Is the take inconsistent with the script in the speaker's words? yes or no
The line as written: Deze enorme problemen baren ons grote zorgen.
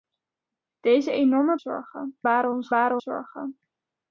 yes